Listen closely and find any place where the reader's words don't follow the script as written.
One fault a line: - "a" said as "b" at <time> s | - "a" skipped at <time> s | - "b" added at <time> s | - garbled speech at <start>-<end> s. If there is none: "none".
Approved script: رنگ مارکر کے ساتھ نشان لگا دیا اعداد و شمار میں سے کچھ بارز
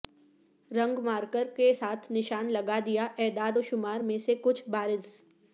none